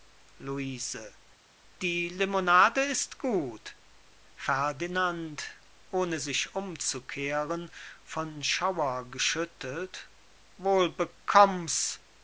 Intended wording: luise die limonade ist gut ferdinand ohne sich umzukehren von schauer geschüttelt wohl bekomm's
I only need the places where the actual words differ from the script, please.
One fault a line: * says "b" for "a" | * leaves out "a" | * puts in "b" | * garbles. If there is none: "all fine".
all fine